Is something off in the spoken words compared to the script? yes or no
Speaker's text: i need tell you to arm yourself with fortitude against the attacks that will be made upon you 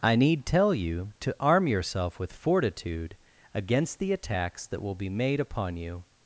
no